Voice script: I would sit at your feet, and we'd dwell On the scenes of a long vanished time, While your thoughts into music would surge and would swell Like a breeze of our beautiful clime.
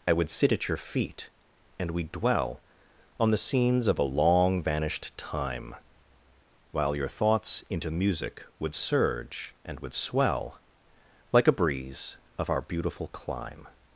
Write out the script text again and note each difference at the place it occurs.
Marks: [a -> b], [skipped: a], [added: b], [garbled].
I would sit at your feet, and we'd dwell On the scenes of a long vanished time, While your thoughts into music would surge and would swell Like a breeze of our beautiful clime.